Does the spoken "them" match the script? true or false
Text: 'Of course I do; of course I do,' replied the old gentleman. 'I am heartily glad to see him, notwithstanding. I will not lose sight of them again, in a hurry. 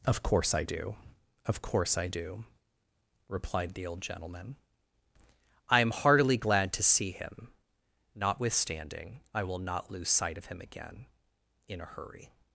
false